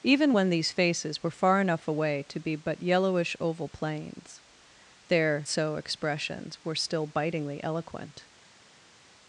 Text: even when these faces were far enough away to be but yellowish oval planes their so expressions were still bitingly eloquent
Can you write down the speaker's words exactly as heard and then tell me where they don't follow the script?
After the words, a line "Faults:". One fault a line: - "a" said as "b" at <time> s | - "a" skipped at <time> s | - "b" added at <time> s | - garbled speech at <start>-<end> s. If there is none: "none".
even when these faces were far enough away to be but yellowish oval planes their so expressions were still bitingly eloquent
Faults:
none